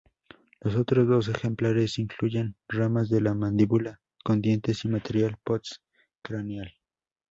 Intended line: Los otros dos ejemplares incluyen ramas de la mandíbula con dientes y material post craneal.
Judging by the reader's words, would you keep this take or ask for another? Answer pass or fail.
pass